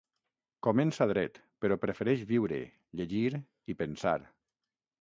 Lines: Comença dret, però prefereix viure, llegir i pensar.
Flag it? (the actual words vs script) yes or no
no